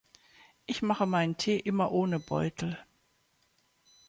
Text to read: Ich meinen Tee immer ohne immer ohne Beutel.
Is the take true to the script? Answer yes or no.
no